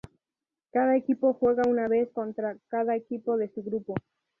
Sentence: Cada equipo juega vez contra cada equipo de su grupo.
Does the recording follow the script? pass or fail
fail